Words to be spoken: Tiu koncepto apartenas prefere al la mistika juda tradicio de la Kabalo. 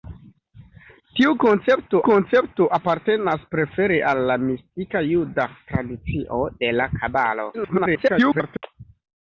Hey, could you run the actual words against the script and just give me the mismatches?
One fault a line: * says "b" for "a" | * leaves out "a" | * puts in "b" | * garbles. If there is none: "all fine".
* puts in "koncepto"
* garbles